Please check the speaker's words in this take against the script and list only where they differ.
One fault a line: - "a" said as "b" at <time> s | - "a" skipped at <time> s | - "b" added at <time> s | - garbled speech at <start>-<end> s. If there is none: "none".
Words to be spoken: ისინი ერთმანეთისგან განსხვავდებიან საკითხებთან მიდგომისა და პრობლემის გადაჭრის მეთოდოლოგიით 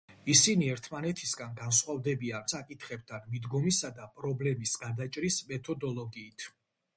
none